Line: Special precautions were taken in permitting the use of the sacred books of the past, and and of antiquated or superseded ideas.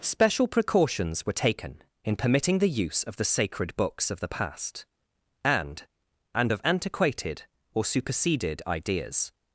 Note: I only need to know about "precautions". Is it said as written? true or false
true